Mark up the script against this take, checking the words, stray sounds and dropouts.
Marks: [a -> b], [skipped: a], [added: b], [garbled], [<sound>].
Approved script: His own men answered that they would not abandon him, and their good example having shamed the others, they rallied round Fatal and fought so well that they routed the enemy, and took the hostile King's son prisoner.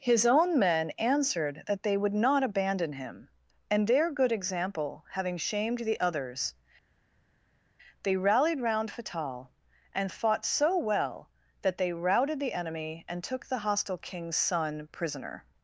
His own men answered that they would not abandon him, and their good example having shamed the others, they rallied round Fatal and fought so well that they routed the enemy, and took the hostile King's son prisoner.